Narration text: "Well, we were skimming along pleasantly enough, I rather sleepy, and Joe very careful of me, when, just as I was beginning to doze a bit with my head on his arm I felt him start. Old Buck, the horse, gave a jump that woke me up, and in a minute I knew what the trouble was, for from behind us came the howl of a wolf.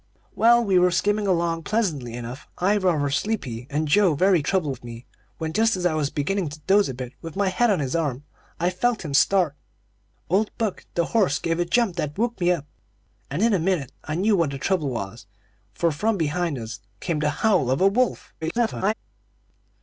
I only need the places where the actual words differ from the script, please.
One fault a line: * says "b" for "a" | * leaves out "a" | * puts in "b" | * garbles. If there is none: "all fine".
* says "trouble" for "careful"
* garbles